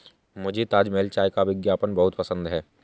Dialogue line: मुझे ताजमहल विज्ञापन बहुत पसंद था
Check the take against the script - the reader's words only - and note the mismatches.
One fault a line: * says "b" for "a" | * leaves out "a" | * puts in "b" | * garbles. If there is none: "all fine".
* puts in "चाय का"
* says "है" for "था"